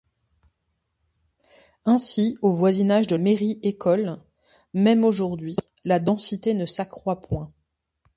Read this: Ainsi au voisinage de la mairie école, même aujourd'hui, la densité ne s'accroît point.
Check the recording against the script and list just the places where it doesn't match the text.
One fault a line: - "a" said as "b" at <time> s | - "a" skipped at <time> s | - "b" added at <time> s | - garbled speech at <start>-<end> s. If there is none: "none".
- "la" skipped at 3.1 s